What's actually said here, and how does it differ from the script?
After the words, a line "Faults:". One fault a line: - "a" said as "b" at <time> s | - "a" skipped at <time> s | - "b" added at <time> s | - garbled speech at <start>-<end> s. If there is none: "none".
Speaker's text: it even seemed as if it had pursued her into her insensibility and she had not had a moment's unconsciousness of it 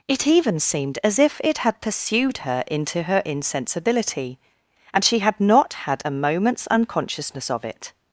it even seemed as if it had pursued her into her insensibility and she had not had a moment's unconsciousness of it
Faults:
none